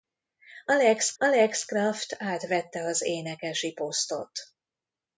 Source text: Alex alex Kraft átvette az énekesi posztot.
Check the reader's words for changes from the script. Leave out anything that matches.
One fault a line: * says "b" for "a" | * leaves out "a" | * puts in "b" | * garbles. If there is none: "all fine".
all fine